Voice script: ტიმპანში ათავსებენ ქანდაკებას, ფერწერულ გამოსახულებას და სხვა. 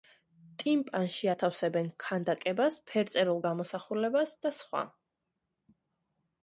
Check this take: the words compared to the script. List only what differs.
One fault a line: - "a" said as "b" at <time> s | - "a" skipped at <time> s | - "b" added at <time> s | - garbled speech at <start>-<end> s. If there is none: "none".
none